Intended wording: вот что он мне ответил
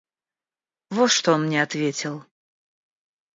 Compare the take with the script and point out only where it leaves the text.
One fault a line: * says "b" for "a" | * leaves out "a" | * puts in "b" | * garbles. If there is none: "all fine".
all fine